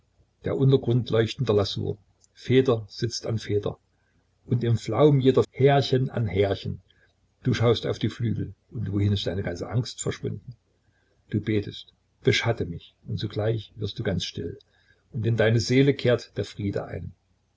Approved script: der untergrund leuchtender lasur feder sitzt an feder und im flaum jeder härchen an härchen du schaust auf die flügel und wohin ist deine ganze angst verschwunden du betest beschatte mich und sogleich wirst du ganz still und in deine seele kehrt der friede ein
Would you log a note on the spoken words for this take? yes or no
no